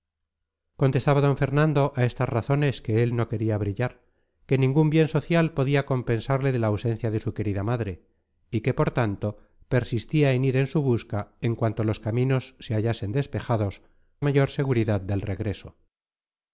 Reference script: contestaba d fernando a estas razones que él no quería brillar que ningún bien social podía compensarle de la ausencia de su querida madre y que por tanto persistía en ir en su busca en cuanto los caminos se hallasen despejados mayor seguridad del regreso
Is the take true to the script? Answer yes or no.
yes